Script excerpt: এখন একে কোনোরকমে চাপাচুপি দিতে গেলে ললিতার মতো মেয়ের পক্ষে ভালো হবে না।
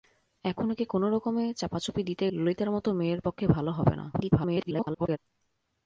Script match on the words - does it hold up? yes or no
no